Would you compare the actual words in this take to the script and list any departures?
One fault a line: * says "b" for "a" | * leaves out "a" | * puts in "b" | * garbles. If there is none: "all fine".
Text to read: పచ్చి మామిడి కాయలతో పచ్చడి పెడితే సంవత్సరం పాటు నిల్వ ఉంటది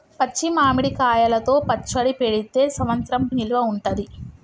* leaves out "పాటు"